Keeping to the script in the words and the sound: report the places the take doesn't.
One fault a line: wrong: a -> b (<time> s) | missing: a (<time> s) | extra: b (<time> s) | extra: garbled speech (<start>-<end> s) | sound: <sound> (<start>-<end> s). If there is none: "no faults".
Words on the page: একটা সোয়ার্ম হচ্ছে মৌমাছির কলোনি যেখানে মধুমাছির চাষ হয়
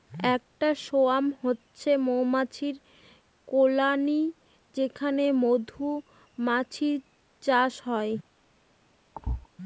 sound: thud (9.1-9.5 s)